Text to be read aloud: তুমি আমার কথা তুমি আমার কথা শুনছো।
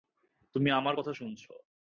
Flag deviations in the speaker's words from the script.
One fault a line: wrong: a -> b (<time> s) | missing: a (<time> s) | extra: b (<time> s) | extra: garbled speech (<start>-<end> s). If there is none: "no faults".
missing: তুমি আমার কথা (1.1 s)